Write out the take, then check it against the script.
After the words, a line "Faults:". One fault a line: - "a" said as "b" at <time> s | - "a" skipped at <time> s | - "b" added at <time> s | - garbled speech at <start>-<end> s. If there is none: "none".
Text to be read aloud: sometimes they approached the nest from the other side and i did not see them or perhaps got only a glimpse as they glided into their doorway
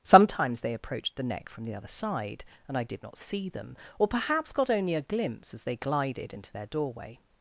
sometimes they approached the neck from the other side and i did not see them or perhaps got only a glimpse as they glided into their doorway
Faults:
- "nest" said as "neck" at 1.2 s